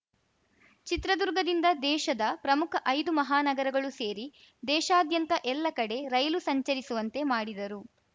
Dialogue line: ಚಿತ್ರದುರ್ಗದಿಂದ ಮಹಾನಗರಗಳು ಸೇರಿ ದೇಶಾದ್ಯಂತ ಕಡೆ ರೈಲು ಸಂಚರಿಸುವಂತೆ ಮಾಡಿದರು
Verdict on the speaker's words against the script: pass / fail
fail